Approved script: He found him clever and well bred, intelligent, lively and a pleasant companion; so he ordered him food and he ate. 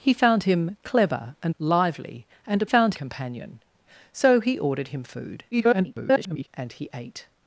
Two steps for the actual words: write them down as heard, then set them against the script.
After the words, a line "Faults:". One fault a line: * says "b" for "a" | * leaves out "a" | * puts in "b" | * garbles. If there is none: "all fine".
He found him clever and lively and a found companion; so he ordered him food [garbled] and he ate.
Faults:
* leaves out "well bred intelligent"
* says "found" for "pleasant"
* garbles